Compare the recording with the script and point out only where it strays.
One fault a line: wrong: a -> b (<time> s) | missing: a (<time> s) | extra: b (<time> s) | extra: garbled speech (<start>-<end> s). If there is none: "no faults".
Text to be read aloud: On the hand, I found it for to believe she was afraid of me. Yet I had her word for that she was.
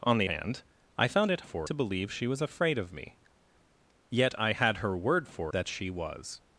no faults